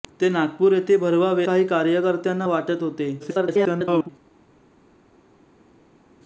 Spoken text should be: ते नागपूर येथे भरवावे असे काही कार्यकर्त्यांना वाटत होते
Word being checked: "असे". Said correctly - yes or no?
no